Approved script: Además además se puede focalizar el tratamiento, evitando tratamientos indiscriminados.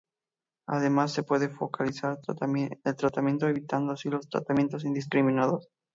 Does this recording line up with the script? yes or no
no